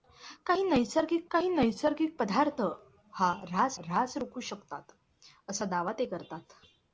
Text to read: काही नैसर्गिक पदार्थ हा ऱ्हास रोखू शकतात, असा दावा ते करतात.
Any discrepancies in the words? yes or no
yes